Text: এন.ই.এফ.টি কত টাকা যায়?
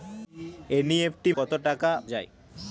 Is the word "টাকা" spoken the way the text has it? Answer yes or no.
yes